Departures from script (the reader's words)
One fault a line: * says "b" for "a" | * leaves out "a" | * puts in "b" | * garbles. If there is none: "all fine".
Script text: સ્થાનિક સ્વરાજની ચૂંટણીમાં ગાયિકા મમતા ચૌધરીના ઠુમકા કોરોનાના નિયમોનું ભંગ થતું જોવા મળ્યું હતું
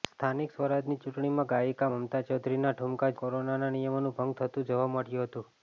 all fine